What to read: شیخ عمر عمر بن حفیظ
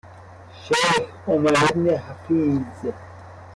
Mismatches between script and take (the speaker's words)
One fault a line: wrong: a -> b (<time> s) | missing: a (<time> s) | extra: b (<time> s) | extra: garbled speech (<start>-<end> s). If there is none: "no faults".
missing: عمر (1.5 s)